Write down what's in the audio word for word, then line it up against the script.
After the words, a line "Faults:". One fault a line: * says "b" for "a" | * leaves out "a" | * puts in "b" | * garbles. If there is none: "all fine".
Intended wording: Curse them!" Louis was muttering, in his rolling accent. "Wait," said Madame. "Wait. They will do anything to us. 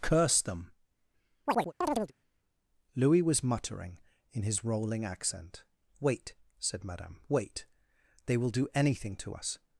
Curse them!" Louis was muttering, in his rolling accent. "Wait," said Madame. "Wait. They will do anything to us.
Faults:
all fine